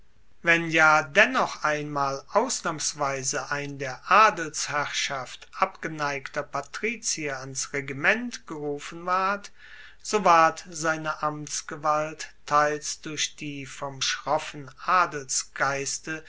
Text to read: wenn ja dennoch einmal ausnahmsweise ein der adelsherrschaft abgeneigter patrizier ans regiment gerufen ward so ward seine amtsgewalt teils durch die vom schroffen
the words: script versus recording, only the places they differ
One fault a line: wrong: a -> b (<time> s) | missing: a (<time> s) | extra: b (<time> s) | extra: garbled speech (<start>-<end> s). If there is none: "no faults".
no faults